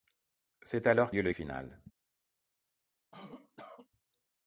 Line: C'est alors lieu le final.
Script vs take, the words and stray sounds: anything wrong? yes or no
yes